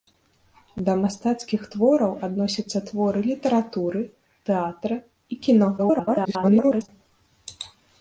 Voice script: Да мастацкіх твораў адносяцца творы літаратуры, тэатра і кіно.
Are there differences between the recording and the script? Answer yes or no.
yes